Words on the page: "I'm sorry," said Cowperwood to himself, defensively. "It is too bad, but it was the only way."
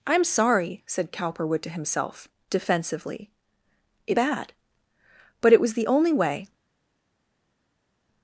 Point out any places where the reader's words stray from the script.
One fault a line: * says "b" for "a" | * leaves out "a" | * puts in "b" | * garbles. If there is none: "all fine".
* leaves out "is too"